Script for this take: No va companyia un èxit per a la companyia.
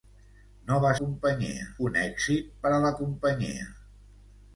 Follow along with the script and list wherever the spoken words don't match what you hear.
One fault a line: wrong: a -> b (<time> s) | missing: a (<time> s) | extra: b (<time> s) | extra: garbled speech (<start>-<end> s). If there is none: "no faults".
no faults